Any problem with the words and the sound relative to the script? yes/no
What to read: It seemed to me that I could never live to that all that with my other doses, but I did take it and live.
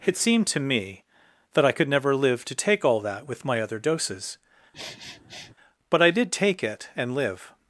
yes